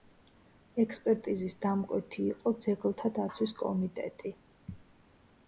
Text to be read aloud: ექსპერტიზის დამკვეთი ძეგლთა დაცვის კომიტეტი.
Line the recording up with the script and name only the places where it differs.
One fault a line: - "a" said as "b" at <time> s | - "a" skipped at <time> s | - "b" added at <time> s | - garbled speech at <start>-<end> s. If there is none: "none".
- "იყო" added at 2.3 s